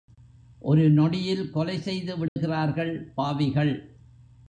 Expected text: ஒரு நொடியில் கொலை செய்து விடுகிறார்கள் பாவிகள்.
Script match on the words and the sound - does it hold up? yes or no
no